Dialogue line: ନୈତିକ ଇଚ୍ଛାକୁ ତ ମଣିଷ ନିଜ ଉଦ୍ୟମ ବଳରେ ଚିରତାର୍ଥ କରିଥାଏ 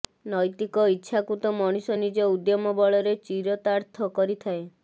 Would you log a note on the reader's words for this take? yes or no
no